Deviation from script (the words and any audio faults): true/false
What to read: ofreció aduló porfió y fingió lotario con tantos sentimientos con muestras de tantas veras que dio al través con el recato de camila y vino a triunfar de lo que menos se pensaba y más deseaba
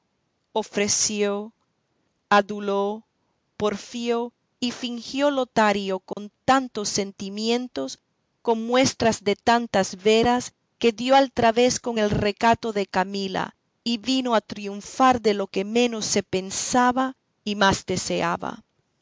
true